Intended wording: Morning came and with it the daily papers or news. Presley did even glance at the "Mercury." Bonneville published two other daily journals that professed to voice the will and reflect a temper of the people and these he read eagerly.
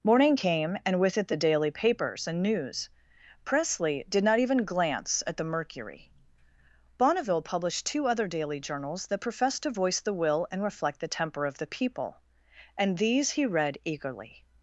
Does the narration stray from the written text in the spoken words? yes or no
yes